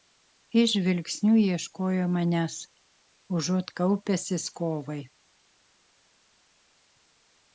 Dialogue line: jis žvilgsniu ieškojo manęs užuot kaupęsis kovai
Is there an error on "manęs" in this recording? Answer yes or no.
no